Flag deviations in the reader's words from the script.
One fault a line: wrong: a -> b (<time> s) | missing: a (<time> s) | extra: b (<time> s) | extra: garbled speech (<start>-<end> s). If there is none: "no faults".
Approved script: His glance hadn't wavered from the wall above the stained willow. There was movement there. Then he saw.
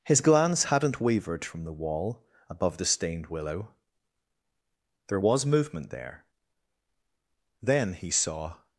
no faults